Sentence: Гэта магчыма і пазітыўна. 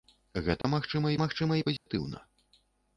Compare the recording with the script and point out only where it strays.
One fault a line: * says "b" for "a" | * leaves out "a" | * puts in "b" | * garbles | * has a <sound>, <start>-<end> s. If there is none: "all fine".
* has a dropout, 0.6-0.6 s
* puts in "магчыма"
* has a dropout, 1.8-1.9 s